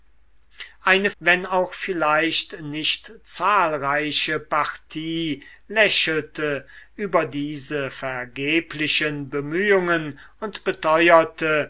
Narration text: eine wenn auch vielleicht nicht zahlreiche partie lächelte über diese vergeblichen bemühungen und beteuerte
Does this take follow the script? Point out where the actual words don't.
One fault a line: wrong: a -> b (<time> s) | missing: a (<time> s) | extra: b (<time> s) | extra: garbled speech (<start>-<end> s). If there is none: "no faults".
no faults